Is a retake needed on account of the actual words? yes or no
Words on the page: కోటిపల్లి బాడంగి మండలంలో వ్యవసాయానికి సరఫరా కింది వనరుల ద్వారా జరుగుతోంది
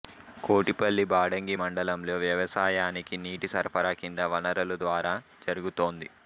yes